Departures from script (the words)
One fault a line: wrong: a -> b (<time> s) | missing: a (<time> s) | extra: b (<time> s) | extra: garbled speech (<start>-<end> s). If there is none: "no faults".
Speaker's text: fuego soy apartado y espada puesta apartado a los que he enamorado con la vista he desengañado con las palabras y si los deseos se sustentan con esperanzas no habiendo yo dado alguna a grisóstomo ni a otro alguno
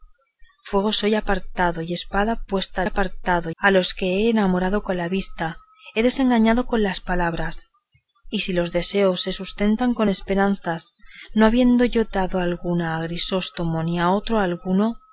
no faults